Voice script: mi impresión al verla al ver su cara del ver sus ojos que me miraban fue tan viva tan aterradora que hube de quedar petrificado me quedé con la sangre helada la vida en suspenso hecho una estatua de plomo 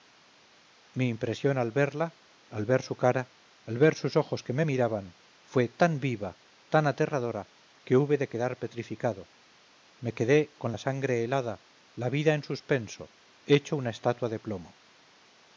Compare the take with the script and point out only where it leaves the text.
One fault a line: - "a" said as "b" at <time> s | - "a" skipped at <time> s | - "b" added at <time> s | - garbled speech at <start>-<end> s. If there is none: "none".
- "del" said as "al" at 3.7 s